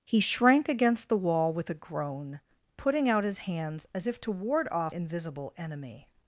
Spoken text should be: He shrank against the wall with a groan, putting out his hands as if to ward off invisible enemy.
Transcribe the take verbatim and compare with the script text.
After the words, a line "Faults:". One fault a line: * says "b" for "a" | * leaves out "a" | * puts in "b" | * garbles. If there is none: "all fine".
He shrank against the wall with a groan, putting out his hands as if to ward off invisible enemy.
Faults:
all fine